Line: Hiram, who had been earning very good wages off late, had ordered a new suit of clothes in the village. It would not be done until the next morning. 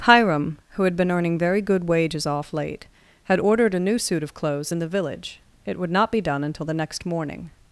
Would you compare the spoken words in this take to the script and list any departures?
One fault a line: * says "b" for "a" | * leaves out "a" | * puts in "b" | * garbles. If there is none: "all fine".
all fine